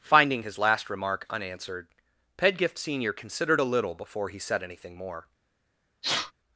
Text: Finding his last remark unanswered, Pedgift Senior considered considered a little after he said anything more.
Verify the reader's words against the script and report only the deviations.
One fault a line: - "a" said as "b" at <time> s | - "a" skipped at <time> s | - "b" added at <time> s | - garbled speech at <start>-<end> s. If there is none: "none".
- "considered" skipped at 3.6 s
- "after" said as "before" at 3.9 s